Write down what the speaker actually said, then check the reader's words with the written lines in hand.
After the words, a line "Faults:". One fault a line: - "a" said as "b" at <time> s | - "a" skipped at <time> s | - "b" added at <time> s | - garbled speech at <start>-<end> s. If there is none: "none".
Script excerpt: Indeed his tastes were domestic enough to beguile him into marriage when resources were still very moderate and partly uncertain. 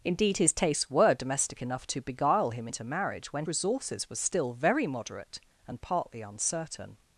Indeed his tastes were domestic enough to beguile him into marriage when resources were still very moderate and partly uncertain.
Faults:
none